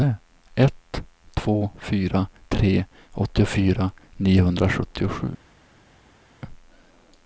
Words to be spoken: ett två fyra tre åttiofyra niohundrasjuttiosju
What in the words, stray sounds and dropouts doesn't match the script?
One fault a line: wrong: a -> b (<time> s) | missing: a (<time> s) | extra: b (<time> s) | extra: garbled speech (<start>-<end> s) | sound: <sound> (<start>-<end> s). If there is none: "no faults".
no faults